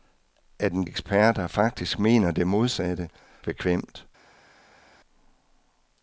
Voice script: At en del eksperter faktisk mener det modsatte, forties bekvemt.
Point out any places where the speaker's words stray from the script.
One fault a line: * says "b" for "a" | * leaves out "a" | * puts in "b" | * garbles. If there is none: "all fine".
* leaves out "del"
* leaves out "forties"